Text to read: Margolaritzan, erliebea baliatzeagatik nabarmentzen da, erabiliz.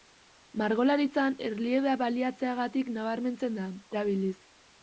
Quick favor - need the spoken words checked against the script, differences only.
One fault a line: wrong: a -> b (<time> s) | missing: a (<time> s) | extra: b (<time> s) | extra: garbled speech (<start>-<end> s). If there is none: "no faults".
no faults